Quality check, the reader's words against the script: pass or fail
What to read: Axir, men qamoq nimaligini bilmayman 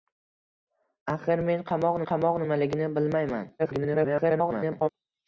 fail